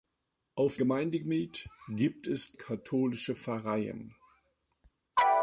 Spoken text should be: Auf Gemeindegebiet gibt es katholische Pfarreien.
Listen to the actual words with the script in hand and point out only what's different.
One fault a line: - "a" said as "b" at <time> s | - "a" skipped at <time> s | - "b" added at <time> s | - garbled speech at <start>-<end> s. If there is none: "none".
none